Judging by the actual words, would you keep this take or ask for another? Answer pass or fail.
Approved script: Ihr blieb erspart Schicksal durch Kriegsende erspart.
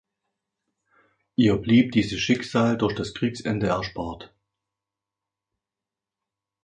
fail